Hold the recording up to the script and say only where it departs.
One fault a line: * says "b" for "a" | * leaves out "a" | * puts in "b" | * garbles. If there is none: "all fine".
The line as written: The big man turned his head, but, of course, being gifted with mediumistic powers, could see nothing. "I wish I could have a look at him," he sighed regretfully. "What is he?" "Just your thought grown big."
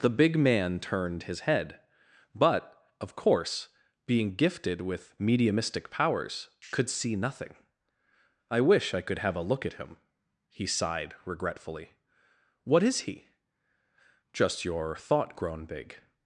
all fine